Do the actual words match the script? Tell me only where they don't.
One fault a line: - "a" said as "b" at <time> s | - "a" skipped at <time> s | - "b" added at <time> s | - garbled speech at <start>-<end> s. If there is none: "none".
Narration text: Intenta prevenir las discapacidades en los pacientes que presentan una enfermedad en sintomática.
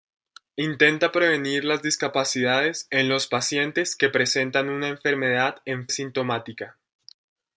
none